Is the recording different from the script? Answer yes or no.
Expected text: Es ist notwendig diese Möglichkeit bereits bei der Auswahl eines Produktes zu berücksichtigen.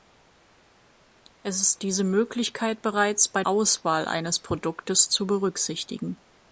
yes